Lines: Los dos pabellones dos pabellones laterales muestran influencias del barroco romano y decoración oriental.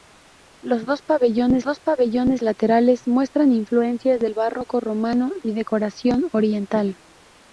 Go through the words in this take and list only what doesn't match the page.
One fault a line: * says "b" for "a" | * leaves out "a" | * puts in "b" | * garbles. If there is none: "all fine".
all fine